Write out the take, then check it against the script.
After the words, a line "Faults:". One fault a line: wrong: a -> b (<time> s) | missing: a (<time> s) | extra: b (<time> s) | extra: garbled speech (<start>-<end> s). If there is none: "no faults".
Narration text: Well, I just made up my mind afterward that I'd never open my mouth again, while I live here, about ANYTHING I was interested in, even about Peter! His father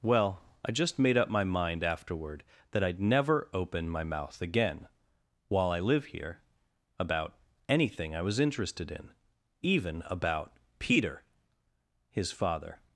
Well, I just made up my mind afterward that I'd never open my mouth again, while I live here, about ANYTHING I was interested in, even about Peter! His father
Faults:
no faults